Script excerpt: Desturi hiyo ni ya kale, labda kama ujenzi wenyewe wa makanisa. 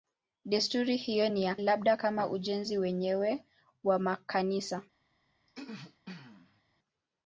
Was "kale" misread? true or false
true